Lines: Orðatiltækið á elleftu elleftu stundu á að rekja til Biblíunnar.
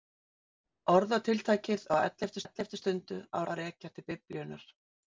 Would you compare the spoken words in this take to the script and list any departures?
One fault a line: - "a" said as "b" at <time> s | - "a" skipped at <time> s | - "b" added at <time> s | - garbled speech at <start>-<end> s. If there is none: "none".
none